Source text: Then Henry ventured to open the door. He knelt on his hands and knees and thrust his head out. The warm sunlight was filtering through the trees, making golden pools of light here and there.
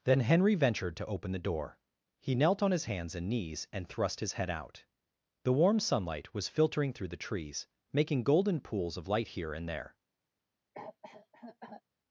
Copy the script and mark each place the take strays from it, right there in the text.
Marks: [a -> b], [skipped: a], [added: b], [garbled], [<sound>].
Then Henry ventured to open the door. He knelt on his hands and knees and thrust his head out. The warm sunlight was filtering through the trees, making golden pools of light here and there. [cough]